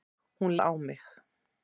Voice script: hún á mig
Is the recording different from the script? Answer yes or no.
no